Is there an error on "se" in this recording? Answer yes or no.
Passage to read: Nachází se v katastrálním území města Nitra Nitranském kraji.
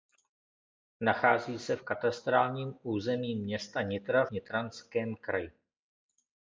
no